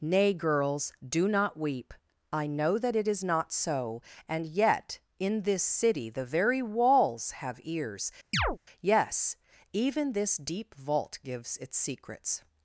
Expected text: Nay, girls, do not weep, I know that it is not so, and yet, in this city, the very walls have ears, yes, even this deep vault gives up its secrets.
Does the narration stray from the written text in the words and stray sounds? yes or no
yes